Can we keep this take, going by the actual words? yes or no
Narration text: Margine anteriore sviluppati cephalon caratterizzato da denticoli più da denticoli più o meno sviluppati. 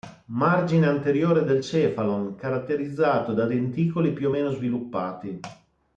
no